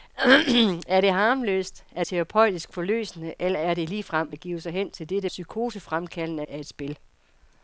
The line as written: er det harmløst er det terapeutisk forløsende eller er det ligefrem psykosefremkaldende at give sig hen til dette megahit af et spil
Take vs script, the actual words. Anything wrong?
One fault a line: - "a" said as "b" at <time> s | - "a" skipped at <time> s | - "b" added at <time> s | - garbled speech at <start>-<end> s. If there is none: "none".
- "det" skipped at 2.0 s
- "psykosefremkaldende" skipped at 4.3 s
- "megahit" said as "psykosefremkaldende" at 5.2 s